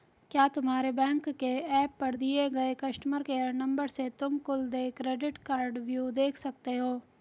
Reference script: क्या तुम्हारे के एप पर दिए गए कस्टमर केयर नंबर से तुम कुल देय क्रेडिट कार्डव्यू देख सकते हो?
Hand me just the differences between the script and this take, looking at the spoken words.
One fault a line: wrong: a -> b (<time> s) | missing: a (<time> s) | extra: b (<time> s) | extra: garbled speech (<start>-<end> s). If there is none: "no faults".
extra: बैंक (0.9 s)